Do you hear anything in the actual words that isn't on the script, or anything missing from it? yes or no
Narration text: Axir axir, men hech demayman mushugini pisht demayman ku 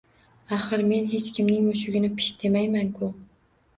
yes